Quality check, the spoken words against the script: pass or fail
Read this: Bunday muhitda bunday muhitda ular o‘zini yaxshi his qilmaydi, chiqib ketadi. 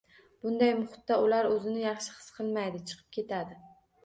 fail